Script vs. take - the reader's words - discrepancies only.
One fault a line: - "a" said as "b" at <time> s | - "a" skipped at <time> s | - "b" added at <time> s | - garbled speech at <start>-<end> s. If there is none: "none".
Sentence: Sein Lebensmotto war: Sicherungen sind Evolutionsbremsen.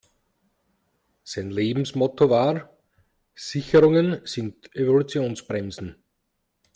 none